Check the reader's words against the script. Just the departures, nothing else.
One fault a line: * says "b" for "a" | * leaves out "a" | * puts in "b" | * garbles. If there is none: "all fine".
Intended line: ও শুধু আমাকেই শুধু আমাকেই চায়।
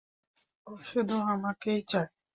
* leaves out "শুধু আমাকেই"